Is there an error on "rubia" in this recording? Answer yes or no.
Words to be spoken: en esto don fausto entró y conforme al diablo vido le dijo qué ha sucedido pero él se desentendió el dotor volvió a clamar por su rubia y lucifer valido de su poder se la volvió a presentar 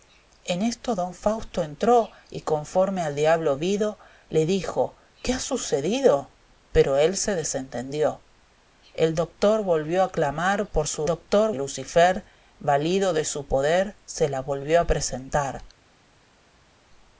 yes